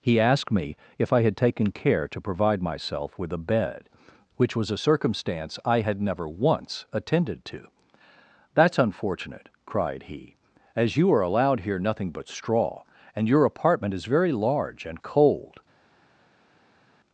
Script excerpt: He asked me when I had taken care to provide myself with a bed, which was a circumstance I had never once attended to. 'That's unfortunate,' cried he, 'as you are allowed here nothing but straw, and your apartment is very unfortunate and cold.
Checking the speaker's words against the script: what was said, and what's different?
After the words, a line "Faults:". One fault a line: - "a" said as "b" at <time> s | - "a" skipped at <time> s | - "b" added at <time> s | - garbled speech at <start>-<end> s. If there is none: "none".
He asked me if I had taken care to provide myself with a bed, which was a circumstance I had never once attended to. 'That's unfortunate,' cried he, 'as you are allowed here nothing but straw, and your apartment is very large and cold.
Faults:
- "when" said as "if" at 1.0 s
- "unfortunate" said as "large" at 14.3 s